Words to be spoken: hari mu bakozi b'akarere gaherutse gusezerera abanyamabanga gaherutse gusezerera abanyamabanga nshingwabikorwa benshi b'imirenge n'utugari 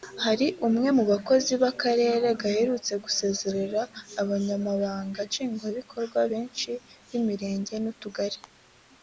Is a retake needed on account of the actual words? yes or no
yes